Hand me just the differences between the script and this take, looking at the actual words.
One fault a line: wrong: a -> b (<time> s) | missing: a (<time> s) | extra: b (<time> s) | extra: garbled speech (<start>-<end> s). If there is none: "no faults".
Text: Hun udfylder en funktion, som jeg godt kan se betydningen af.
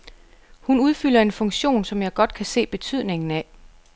no faults